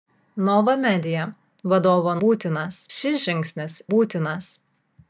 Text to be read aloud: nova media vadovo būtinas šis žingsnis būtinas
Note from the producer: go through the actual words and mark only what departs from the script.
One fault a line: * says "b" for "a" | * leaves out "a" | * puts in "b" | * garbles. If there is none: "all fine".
all fine